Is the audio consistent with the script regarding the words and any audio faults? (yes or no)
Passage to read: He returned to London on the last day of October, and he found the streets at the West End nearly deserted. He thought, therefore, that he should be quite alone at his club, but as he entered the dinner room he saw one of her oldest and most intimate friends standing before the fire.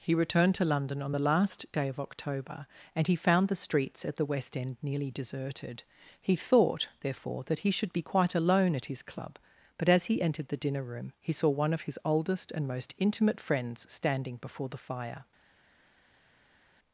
no